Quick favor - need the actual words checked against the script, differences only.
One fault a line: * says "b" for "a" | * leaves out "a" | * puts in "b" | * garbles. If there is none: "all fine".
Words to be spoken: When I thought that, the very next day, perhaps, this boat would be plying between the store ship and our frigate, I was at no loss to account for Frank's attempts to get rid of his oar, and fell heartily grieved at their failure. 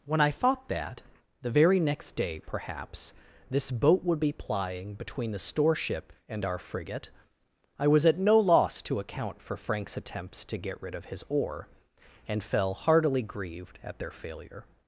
all fine